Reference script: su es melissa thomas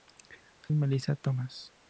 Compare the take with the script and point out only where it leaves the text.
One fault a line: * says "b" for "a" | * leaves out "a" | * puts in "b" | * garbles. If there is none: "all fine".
all fine